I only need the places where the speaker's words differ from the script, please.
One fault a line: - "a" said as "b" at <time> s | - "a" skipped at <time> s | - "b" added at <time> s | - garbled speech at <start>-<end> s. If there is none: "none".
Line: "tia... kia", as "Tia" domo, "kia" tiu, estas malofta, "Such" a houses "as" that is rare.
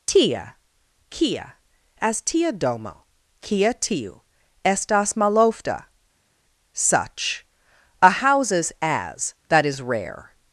none